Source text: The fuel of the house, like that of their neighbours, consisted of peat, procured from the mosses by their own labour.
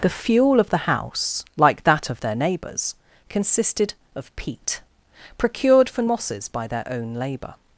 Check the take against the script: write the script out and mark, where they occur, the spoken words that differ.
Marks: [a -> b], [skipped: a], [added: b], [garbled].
The fuel of the house, like that of their neighbours, consisted of peat, procured from [skipped: the] mosses by their own labour.